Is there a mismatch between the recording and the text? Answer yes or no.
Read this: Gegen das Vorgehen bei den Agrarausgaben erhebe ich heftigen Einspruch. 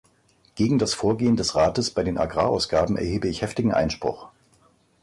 yes